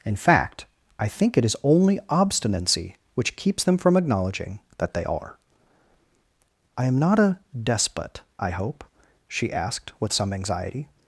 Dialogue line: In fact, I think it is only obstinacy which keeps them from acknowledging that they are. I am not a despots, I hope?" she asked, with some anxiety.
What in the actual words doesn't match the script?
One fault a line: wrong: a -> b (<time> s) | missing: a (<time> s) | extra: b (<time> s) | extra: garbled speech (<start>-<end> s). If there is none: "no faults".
wrong: despots -> despot (7.6 s)